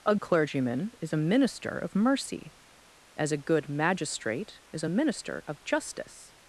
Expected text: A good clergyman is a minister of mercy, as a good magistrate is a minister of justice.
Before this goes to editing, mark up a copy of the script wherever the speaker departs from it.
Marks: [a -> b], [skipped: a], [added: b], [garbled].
A [skipped: good] clergyman is a minister of mercy, as a good magistrate is a minister of justice.